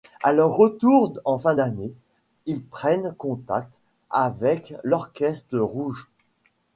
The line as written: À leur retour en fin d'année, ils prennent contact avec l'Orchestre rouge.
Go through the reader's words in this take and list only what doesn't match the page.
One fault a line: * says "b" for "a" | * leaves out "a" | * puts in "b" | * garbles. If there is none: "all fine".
all fine